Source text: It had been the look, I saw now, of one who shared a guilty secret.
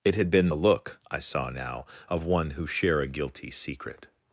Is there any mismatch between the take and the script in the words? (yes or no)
yes